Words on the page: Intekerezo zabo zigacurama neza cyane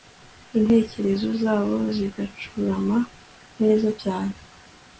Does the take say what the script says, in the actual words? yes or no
yes